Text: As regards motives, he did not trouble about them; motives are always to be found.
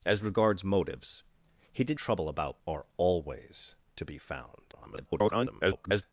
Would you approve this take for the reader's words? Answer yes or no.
no